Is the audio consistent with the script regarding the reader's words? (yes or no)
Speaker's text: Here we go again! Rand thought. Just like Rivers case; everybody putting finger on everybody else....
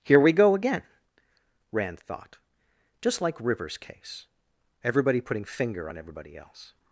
yes